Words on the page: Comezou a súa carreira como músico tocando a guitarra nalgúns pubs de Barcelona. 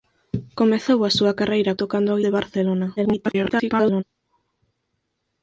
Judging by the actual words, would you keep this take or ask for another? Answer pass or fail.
fail